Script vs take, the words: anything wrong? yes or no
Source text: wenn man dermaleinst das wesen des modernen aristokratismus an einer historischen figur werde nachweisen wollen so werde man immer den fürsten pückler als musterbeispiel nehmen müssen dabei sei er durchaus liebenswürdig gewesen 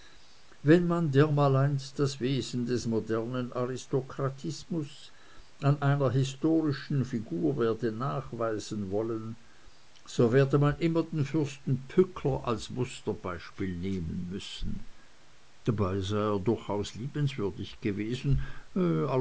no